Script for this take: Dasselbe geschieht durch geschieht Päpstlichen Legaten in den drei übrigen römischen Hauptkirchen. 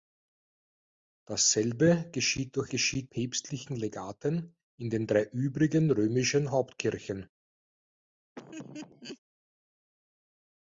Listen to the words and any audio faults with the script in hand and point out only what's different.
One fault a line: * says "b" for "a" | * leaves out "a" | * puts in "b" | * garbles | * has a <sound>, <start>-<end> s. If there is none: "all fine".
* has a laugh, 8.4-9.2 s